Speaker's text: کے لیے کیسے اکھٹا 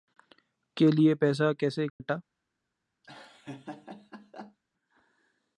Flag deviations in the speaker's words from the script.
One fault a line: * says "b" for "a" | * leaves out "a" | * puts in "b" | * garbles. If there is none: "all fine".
* puts in "پیسہ"